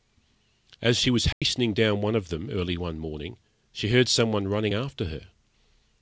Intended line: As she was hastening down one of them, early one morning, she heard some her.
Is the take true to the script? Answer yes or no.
no